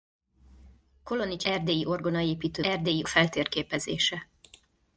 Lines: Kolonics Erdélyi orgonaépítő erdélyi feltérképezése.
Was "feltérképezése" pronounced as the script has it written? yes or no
yes